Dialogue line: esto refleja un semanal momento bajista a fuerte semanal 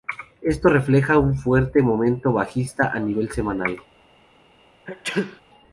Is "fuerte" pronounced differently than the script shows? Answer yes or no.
yes